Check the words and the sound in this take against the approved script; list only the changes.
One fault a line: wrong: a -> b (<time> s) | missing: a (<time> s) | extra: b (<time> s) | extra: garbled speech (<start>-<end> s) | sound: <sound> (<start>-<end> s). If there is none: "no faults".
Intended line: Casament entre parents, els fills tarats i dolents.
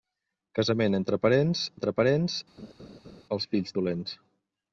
extra: entre parents (1.7 s)
sound: laugh (2.6-3.2 s)
missing: tarats (3.8 s)